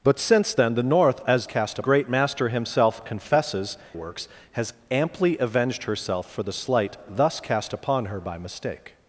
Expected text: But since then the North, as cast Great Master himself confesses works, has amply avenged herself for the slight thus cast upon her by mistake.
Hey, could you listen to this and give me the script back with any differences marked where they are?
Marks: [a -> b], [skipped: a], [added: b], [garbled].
But since then the North, as cast Great Master himself confesses works, has amply avenged herself for the slight thus cast upon her by mistake.